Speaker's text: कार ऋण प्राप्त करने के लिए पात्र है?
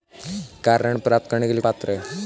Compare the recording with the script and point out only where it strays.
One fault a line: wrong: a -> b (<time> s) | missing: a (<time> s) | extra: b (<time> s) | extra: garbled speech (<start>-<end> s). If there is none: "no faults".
no faults